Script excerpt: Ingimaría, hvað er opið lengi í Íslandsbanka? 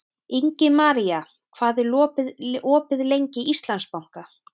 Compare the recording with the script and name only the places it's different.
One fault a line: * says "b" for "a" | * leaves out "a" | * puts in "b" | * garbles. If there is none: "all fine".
all fine